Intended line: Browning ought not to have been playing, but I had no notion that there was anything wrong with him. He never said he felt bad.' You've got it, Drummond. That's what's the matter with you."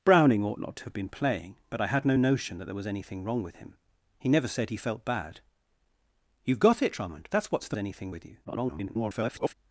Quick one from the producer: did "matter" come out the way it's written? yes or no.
no